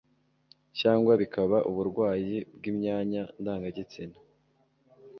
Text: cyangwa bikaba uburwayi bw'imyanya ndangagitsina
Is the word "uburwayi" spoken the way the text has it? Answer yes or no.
yes